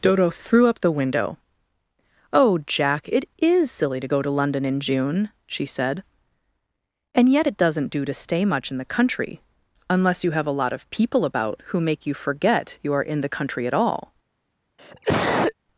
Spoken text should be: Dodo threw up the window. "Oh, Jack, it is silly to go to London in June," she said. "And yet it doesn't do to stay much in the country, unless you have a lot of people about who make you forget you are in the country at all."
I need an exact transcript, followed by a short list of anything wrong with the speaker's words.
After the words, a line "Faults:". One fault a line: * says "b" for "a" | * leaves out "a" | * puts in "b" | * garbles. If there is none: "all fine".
Dodo threw up the window. "Oh, Jack, it is silly to go to London in June," she said. "And yet it doesn't do to stay much in the country, unless you have a lot of people about who make you forget you are in the country at all."
Faults:
all fine